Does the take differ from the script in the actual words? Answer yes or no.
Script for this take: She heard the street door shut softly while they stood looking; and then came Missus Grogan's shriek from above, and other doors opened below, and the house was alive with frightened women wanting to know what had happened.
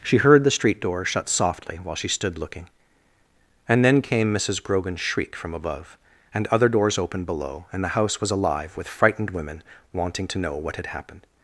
yes